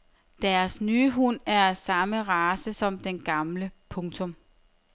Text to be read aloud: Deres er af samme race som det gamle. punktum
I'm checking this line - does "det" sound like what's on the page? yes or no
no